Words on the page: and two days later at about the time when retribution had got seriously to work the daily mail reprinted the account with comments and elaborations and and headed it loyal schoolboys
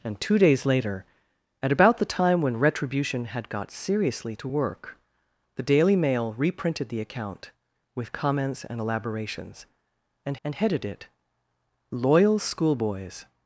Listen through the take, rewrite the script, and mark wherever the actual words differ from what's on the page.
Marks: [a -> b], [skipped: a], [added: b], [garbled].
and two days later at about the time when retribution had got seriously to work the daily mail reprinted the account with comments and elaborations and and headed it loyal schoolboys